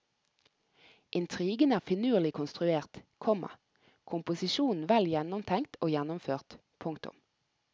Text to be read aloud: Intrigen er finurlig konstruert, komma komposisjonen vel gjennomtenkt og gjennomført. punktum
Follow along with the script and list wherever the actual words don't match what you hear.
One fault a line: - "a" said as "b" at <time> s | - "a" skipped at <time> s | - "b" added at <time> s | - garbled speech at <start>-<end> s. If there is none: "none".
none